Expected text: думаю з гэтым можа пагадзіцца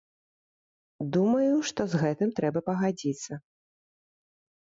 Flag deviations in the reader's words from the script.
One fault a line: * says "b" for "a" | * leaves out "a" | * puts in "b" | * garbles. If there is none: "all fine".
* puts in "што"
* says "трэба" for "можа"